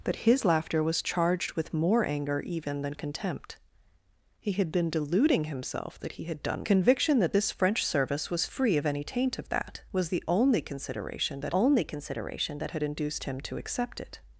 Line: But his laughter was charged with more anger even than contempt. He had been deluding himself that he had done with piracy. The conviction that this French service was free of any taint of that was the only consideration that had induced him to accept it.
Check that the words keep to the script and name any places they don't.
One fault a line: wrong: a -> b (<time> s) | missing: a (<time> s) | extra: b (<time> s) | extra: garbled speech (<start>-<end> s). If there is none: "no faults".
missing: with piracy The (6.6 s)
extra: only consideration that (11.5 s)